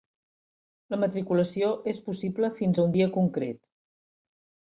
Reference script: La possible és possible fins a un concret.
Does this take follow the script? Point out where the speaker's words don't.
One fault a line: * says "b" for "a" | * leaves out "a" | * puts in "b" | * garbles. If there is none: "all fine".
* says "matriculació" for "possible"
* puts in "dia"